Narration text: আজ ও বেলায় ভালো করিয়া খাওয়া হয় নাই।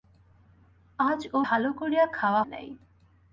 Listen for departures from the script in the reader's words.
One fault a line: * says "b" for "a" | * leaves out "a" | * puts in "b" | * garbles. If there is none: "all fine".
* leaves out "বেলায়"
* leaves out "হয়"